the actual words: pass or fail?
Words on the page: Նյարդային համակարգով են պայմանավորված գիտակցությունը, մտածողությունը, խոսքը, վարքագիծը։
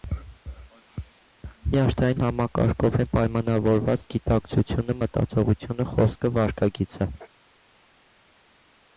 pass